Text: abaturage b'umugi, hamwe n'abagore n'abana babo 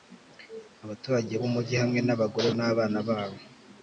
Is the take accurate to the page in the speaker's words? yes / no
yes